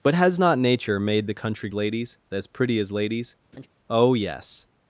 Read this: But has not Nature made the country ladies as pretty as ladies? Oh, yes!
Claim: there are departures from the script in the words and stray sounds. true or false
true